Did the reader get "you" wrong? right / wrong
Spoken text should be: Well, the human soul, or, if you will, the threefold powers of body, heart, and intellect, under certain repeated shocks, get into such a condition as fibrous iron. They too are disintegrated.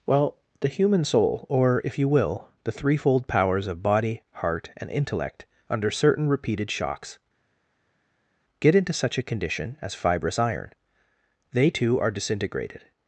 right